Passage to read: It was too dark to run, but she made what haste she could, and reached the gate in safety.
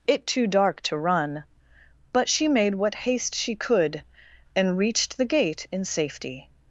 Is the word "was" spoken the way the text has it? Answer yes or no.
no